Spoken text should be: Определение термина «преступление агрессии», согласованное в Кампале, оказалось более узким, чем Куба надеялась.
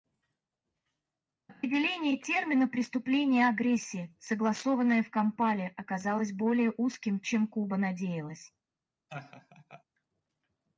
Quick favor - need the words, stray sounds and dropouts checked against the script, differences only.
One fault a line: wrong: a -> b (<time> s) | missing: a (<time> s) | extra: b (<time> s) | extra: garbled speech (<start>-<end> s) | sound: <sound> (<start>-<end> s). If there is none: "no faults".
sound: laugh (9.1-9.8 s)